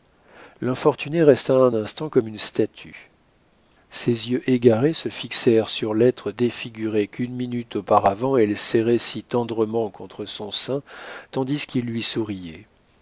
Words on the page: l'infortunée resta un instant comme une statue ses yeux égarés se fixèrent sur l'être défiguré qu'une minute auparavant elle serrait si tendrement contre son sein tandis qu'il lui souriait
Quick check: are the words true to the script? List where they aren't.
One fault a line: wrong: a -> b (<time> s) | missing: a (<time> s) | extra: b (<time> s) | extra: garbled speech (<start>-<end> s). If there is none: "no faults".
no faults